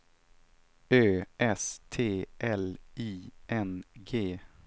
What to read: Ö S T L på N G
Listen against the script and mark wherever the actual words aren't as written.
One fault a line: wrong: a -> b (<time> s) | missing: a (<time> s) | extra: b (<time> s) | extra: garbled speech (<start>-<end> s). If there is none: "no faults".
wrong: på -> I (2.9 s)